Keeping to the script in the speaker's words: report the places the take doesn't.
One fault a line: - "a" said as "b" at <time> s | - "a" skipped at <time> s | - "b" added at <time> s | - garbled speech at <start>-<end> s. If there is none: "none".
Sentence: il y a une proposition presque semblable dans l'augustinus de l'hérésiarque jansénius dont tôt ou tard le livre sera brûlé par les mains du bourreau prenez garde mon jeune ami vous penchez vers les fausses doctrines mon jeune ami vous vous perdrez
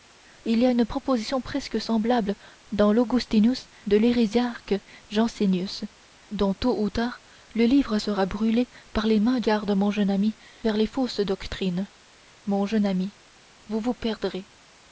- "du bourreau prenez" skipped at 9.4 s
- "vous penchez" skipped at 10.4 s